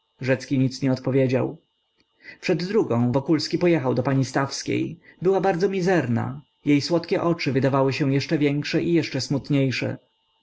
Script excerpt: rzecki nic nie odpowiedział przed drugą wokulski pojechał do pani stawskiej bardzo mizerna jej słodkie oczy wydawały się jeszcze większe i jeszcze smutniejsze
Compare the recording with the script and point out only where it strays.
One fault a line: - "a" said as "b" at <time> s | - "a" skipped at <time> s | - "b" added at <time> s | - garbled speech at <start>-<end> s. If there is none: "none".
- "była" added at 5.2 s